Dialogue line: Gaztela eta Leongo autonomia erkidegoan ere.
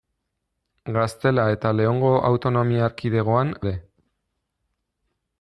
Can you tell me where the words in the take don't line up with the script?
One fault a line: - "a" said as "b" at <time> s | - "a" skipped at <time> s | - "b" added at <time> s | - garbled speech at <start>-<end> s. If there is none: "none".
none